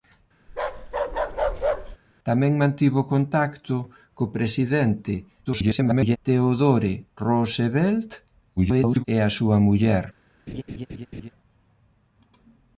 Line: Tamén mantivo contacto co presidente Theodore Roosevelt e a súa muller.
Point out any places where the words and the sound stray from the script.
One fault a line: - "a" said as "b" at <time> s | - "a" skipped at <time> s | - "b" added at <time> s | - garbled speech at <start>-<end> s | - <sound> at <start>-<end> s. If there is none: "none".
- bark at 0.5-2.0 s
- garbled speech at 5.4-6.2 s
- garbled speech at 8.6-9.0 s
- laugh at 10.5-11.3 s